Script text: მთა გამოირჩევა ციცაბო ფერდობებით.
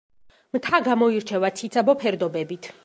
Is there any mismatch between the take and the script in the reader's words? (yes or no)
no